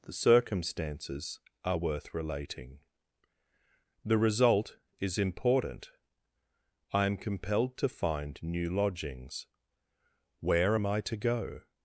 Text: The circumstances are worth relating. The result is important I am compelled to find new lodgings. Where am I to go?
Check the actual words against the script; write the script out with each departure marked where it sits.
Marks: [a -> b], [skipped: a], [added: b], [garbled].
The circumstances are worth relating. The result is important I am compelled to find new lodgings. Where am I to go?